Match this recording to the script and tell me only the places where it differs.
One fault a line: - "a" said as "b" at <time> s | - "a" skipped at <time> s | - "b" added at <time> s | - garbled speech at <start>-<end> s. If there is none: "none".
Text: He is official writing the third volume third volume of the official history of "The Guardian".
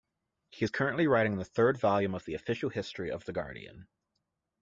- "official" said as "currently" at 0.7 s
- "third volume" skipped at 2.1 s